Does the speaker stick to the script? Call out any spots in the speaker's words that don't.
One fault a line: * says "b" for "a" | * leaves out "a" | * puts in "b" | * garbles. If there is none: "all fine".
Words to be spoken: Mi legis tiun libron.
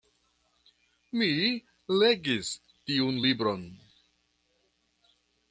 all fine